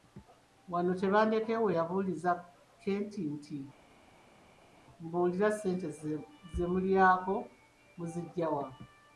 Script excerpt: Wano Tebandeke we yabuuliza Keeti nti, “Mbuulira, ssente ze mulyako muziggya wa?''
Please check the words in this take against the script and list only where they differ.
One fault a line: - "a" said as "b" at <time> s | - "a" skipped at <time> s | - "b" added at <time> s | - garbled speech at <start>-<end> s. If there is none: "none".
none